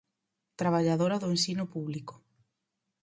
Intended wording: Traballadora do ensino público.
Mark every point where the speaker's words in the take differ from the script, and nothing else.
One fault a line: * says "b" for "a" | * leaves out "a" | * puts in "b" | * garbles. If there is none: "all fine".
all fine